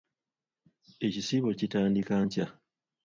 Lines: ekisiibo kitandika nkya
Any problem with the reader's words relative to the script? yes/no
no